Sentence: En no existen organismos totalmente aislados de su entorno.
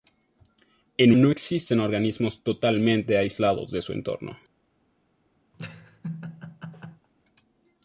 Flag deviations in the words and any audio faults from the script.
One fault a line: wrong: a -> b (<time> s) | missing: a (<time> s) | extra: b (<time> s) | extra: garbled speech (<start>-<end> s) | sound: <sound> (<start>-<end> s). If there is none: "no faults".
sound: laugh (5.5-7.1 s)